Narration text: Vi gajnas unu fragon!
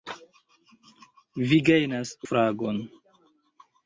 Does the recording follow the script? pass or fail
fail